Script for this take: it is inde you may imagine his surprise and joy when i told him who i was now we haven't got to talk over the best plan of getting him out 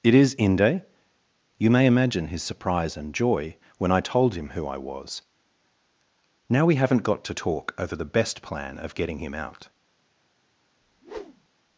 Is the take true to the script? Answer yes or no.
yes